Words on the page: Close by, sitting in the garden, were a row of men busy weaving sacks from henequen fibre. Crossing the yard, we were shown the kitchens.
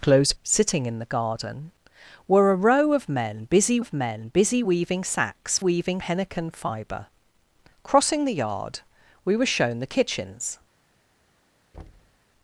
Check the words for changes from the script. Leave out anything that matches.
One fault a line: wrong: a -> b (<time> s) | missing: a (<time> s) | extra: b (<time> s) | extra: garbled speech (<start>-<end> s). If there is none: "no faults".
missing: by (0.3 s)
extra: of men busy (3.8 s)
wrong: from -> weaving (5.6 s)